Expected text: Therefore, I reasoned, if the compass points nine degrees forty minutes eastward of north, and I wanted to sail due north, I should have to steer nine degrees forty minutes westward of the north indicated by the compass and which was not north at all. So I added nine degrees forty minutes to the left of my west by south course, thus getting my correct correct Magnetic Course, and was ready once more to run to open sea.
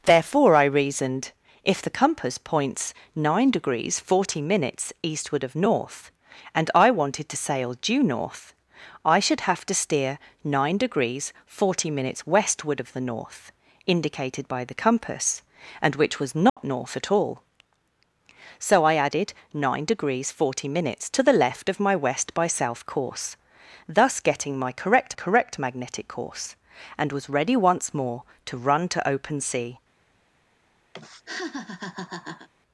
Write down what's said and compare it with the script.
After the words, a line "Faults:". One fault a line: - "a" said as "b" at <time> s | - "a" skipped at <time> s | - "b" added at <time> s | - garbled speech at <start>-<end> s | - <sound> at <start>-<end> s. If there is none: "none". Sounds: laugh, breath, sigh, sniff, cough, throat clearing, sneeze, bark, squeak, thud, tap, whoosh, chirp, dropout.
Therefore, I reasoned, if the compass points nine degrees forty minutes eastward of north, and I wanted to sail due north, I should have to steer nine degrees forty minutes westward of the north indicated by the compass and which was not north at all. So I added nine degrees forty minutes to the left of my west by south course, thus getting my correct correct Magnetic Course, and was ready once more to run to open sea.
Faults:
- dropout at 16.5-16.6 s
- laugh at 30.9-32.5 s